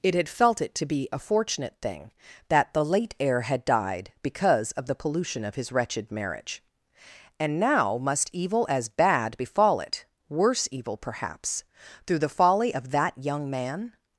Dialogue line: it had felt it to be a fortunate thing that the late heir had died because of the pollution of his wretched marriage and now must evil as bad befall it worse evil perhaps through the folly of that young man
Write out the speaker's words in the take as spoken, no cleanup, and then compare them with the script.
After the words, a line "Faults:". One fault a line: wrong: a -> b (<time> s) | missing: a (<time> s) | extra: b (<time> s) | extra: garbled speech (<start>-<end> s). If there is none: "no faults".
it had felt it to be a fortunate thing that the late heir had died because of the pollution of his wretched marriage and now must evil as bad befall it worse evil perhaps through the folly of that young man
Faults:
no faults